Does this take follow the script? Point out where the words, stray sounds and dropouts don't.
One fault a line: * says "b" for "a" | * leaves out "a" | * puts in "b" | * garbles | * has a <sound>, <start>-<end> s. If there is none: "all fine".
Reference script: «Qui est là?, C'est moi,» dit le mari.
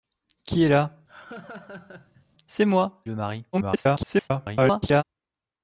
* has a laugh, 1.1-2.3 s
* leaves out "dit"
* garbles